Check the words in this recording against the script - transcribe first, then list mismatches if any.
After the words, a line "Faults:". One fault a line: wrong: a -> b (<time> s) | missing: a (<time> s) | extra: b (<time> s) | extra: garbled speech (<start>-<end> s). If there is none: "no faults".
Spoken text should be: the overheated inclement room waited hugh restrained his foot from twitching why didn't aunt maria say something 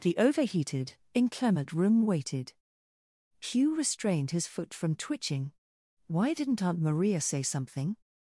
the overheated inclement room waited hugh restrained his foot from twitching why didn't aunt maria say something
Faults:
no faults